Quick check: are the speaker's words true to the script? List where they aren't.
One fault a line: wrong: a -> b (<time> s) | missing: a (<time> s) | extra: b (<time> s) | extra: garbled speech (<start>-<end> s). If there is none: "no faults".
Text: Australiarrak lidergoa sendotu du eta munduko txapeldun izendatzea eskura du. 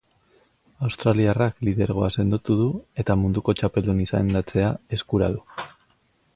no faults